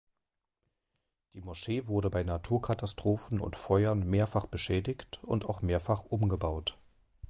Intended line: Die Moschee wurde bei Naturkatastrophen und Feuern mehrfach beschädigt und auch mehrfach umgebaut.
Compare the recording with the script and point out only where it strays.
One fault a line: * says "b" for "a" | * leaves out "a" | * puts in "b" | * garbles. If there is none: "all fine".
all fine